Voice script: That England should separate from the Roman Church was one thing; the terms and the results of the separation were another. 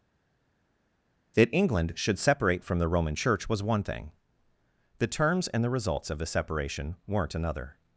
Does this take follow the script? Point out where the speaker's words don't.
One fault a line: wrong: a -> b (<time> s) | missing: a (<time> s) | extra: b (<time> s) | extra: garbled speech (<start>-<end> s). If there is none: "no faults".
wrong: were -> weren't (7.1 s)